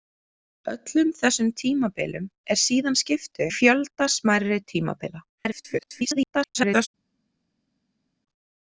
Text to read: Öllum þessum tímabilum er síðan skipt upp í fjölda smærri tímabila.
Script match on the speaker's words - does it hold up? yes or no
no